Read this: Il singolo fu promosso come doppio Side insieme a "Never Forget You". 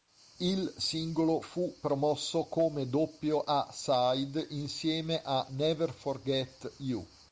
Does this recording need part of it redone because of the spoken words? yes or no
yes